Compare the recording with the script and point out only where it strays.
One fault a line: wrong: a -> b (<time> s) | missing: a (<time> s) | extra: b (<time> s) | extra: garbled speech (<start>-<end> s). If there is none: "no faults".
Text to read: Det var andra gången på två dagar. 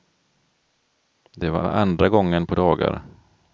extra: var (1.6 s)
missing: två (2.5 s)